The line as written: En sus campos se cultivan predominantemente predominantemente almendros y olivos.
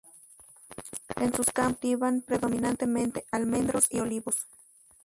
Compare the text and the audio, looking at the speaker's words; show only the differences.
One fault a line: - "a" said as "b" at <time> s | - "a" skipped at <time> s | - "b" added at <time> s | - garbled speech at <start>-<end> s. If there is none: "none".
- "predominantemente" skipped at 3.2 s